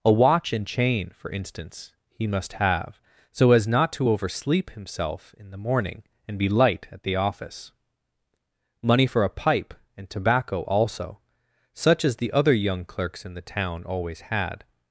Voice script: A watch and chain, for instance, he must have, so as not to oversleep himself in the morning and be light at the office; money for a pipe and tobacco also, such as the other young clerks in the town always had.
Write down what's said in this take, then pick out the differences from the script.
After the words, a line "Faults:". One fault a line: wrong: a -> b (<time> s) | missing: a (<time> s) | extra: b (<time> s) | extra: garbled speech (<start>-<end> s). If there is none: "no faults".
A watch and chain, for instance, he must have, so as not to oversleep himself in the morning and be light at the office; money for a pipe and tobacco also, such as the other young clerks in the town always had.
Faults:
no faults